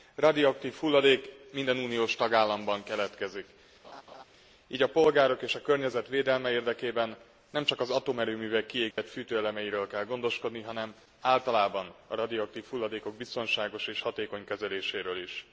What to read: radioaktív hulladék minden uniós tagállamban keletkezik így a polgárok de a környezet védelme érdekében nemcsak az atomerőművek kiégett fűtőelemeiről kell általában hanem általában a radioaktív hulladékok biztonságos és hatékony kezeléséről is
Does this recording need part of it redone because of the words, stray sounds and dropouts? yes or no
yes